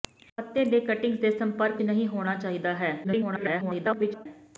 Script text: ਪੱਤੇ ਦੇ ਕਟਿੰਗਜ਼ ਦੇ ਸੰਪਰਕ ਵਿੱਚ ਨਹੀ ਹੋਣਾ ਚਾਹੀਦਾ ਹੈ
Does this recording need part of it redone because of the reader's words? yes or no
yes